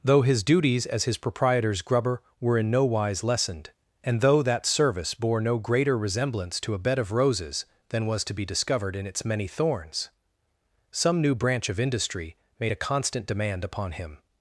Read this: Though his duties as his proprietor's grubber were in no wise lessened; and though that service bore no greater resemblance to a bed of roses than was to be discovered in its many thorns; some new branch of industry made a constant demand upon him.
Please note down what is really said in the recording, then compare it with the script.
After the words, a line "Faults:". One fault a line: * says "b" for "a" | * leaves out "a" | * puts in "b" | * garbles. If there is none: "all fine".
Though his duties as his proprietor's grubber were in no wise lessened; and though that service bore no greater resemblance to a bed of roses than was to be discovered in its many thorns; some new branch of industry made a constant demand upon him.
Faults:
all fine